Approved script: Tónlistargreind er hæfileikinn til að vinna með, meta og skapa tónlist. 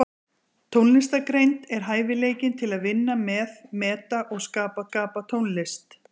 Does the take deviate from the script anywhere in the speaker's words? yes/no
yes